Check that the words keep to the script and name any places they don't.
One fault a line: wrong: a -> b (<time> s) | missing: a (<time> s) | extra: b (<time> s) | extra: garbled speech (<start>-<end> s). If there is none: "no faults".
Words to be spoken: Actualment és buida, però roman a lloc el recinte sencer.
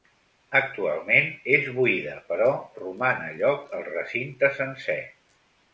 no faults